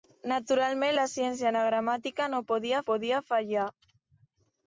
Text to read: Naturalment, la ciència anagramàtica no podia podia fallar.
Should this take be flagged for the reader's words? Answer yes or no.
no